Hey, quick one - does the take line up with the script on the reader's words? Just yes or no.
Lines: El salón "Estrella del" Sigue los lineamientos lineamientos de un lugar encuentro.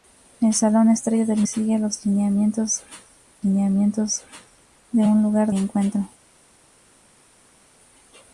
yes